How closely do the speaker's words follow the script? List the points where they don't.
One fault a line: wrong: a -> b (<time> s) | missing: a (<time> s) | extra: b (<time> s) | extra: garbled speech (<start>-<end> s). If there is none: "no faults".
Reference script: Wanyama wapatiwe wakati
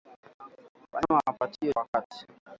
no faults